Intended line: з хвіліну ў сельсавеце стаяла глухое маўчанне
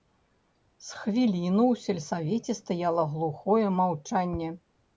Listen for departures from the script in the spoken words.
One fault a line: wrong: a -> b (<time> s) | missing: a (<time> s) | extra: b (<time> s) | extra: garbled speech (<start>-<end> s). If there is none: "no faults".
no faults